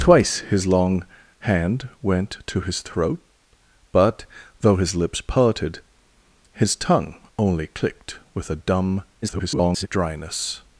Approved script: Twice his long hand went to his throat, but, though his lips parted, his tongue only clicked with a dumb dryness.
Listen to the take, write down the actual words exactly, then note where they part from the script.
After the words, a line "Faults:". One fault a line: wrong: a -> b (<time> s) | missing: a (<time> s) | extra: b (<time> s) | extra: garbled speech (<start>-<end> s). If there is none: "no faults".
Twice his long hand went to his throat, but, though his lips parted, his tongue only clicked with a dumb [garbled] dryness.
Faults:
extra: garbled speech (9.2-9.9 s)